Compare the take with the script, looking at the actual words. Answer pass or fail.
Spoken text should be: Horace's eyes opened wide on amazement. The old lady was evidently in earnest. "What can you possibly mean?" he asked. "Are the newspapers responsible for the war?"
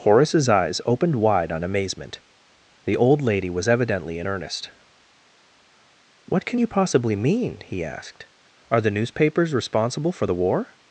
pass